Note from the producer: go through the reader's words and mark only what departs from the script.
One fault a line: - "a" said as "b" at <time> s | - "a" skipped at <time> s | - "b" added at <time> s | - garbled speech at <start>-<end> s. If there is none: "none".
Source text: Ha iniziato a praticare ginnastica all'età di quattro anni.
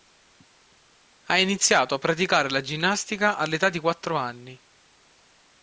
- "la" added at 2.5 s